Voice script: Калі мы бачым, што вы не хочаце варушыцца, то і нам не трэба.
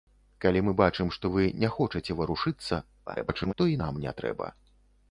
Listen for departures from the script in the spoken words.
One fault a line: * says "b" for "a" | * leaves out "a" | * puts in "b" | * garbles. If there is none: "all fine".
* garbles